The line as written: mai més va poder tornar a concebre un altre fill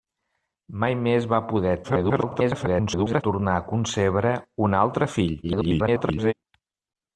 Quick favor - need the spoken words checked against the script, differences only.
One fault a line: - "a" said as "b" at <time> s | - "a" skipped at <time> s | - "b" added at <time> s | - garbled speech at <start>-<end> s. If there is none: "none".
- garbled speech at 1.8-3.2 s
- garbled speech at 5.4-6.3 s